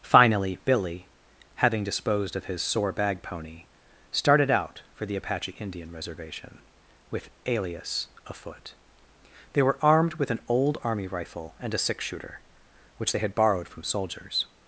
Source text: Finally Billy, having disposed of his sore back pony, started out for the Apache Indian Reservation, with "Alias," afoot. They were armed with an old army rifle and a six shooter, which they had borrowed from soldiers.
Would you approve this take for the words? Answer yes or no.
no